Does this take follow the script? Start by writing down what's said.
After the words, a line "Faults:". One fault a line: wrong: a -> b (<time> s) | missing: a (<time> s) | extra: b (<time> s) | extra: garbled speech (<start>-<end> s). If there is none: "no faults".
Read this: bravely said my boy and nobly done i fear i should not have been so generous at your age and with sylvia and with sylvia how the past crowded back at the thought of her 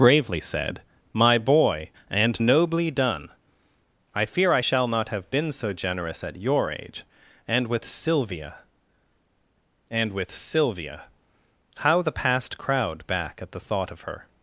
bravely said my boy and nobly done i fear i shall not have been so generous at your age and with sylvia and with sylvia how the past crowd back at the thought of her
Faults:
wrong: should -> shall (4.6 s)
wrong: crowded -> crowd (12.6 s)